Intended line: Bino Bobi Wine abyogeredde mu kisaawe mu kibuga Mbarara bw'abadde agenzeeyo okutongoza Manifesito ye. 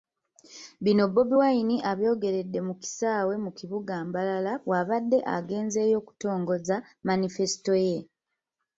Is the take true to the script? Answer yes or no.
yes